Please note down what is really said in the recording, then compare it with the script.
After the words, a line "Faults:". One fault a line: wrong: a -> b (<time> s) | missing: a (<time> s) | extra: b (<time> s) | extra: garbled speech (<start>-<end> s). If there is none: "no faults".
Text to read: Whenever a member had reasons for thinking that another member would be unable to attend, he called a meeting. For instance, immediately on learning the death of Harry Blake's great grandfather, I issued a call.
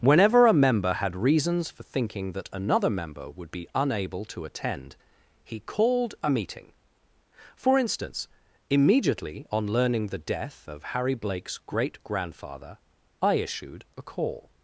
Whenever a member had reasons for thinking that another member would be unable to attend, he called a meeting. For instance, immediately on learning the death of Harry Blake's great grandfather, I issued a call.
Faults:
no faults